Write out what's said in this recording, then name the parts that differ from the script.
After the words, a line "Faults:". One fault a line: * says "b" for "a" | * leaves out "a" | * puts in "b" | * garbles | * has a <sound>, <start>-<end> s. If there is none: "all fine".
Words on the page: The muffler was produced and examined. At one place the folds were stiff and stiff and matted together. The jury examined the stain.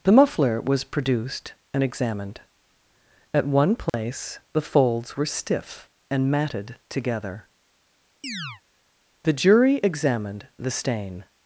The muffler was produced and examined. At one place the folds were stiff and matted together. The jury examined the stain.
Faults:
* has a dropout, 3.9-3.9 s
* leaves out "stiff and"
* has a chirp, 8.2-8.6 s